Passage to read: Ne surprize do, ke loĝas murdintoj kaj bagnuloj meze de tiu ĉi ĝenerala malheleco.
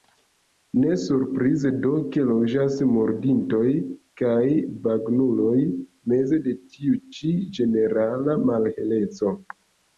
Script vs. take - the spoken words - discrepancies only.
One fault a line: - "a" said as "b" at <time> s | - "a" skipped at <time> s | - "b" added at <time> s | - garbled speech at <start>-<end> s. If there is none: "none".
none